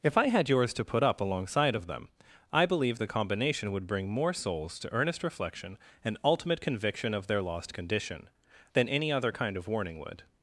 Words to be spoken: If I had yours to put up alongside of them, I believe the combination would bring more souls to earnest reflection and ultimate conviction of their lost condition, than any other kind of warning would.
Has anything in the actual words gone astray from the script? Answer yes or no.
no